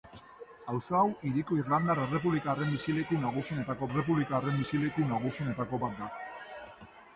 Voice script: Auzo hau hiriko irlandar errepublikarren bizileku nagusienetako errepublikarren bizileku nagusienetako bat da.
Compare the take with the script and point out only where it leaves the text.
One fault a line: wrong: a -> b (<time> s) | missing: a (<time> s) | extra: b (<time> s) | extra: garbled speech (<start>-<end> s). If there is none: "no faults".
no faults